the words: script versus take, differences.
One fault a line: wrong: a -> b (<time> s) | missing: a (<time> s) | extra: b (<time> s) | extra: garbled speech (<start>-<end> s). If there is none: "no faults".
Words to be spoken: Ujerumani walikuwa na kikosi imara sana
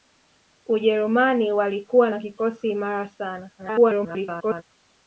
extra: garbled speech (3.6-4.6 s)